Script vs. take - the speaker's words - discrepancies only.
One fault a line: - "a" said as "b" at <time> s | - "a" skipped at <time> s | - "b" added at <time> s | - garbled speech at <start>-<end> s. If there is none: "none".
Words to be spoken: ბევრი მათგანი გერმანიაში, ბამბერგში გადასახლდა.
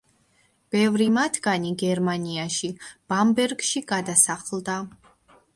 none